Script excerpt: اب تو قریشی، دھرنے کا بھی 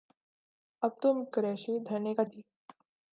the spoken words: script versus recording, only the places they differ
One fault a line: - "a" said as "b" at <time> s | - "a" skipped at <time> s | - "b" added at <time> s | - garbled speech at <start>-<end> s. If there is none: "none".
none